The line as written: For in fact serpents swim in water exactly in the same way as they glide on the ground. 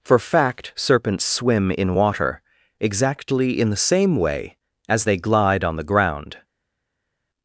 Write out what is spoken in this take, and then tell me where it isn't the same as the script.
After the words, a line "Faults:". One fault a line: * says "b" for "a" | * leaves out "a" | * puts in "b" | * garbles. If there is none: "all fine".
For fact serpents swim in water exactly in the same way as they glide on the ground.
Faults:
* leaves out "in"